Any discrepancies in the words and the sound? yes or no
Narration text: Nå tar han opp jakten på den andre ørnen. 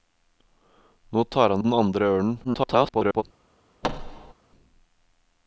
yes